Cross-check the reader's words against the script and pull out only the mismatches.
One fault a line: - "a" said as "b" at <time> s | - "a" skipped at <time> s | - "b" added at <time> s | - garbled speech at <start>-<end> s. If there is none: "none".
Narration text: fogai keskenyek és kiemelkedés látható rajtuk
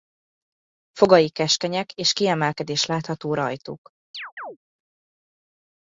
none